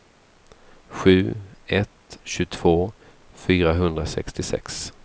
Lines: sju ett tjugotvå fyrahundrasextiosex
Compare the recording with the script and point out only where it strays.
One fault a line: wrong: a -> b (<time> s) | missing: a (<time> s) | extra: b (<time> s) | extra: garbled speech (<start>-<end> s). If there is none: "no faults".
no faults